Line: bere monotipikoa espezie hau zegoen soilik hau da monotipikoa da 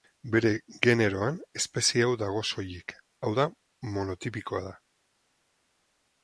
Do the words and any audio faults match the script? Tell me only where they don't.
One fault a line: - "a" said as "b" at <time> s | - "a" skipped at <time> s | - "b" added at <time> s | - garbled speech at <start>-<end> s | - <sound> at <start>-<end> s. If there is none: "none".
- "monotipikoa" said as "generoan" at 0.9 s
- "zegoen" said as "dago" at 2.2 s